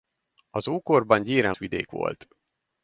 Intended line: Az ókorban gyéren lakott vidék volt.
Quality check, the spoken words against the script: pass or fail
fail